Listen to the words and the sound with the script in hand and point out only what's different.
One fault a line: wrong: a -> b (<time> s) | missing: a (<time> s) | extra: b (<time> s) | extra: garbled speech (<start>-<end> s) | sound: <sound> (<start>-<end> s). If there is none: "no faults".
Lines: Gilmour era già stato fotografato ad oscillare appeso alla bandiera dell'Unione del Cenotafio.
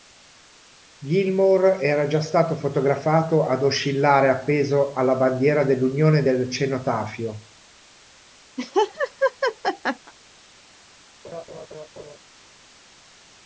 sound: laugh (8.6-10.1 s)
sound: laugh (11.2-12.2 s)